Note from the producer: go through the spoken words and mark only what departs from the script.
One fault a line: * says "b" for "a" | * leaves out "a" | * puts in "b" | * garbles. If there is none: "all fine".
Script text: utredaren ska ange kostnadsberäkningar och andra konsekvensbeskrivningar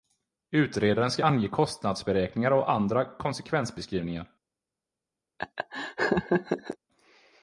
all fine